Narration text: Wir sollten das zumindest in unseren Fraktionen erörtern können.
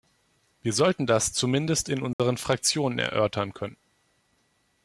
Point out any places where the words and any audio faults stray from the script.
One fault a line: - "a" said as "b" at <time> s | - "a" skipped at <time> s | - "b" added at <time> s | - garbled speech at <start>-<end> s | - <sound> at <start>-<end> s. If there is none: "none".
- dropout at 2.1-2.2 s